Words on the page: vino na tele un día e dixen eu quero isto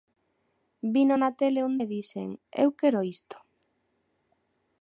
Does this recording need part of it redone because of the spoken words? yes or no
yes